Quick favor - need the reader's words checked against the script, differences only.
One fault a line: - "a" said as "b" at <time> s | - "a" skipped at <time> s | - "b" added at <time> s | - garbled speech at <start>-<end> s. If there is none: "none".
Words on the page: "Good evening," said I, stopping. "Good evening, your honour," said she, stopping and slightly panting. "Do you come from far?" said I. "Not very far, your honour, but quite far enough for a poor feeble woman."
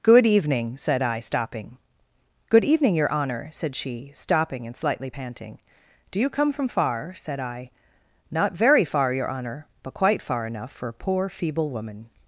none